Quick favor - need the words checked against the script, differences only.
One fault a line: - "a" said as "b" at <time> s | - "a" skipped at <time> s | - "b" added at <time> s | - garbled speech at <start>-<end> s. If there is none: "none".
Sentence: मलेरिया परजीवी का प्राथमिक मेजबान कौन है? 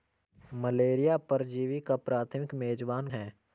- "कौन" skipped at 3.1 s